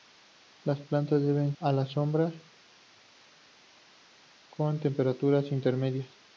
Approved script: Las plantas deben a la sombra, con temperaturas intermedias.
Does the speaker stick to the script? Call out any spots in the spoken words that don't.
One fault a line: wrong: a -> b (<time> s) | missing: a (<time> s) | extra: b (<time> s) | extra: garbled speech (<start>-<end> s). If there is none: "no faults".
no faults